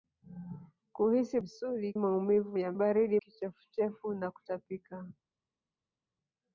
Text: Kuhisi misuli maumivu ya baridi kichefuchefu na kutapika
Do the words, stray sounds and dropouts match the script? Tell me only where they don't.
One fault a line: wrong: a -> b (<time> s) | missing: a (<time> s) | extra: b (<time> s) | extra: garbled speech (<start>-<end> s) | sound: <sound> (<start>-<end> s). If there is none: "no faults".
no faults